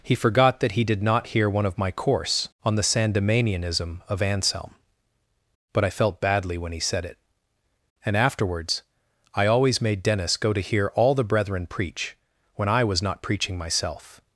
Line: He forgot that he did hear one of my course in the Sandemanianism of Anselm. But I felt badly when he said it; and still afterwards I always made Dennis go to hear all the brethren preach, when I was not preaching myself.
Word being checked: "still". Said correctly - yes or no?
no